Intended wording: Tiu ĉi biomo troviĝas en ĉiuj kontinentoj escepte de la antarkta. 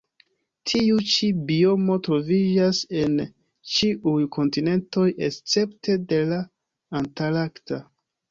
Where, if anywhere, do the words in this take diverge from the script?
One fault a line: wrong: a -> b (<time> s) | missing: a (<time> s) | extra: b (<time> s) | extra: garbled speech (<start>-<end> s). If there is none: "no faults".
no faults